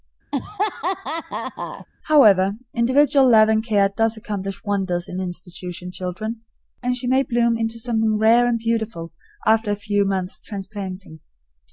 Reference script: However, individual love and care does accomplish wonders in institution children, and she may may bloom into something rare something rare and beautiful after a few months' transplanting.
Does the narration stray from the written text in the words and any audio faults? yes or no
yes